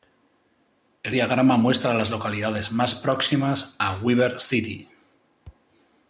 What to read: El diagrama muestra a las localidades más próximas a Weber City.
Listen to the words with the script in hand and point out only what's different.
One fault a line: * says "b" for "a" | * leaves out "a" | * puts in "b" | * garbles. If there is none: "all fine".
all fine